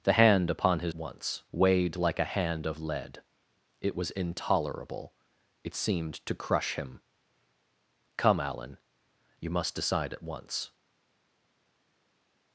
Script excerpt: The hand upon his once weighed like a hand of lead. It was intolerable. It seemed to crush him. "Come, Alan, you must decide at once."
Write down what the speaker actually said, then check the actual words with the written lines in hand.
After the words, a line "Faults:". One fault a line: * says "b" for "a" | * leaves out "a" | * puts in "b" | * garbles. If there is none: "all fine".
The hand upon his once weighed like a hand of lead. It was intolerable. It seemed to crush him. "Come, Alan, you must decide at once."
Faults:
all fine